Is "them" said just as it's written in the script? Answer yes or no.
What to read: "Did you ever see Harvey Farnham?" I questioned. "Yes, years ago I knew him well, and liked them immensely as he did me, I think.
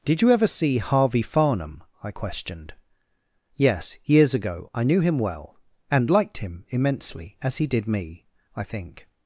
no